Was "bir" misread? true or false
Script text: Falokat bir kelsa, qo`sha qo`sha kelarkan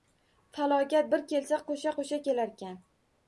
false